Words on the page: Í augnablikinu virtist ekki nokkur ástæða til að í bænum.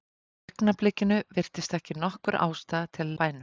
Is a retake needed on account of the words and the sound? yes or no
no